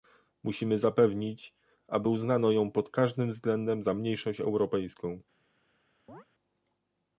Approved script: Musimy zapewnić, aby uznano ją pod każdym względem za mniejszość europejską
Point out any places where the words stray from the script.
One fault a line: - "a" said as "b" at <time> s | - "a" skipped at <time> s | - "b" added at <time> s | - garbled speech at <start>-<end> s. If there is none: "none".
none